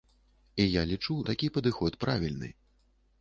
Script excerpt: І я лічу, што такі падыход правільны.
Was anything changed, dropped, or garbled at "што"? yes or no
yes